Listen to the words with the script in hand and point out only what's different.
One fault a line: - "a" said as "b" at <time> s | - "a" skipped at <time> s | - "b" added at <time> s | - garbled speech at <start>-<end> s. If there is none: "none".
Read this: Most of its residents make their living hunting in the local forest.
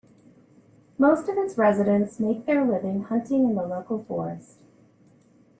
none